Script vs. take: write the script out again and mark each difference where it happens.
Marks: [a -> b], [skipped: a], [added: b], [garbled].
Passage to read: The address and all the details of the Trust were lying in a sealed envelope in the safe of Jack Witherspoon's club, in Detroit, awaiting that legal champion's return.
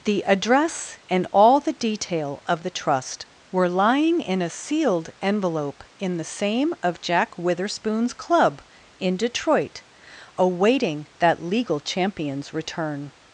The address and all the [details -> detail] of the Trust were lying in a sealed envelope in the [safe -> same] of Jack Witherspoon's club, in Detroit, awaiting that legal champion's return.